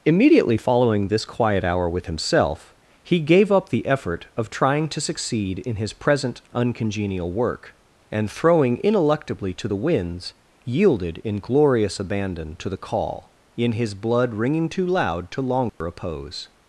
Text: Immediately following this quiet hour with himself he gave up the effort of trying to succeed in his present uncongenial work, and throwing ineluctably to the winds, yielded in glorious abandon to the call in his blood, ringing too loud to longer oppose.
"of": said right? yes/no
yes